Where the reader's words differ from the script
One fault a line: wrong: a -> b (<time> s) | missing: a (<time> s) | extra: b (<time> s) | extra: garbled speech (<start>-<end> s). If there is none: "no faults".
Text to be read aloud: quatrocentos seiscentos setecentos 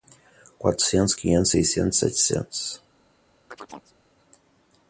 extra: quinhentos (1.1 s)